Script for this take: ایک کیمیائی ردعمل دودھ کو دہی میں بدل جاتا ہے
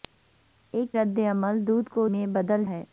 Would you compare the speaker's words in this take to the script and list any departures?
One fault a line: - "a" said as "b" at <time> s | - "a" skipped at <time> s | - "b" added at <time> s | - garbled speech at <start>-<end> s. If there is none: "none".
- "کیمیائی" skipped at 0.9 s
- "دہی" skipped at 2.1 s
- "جاتا" skipped at 2.7 s